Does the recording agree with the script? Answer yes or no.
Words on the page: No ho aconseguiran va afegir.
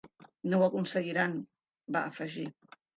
yes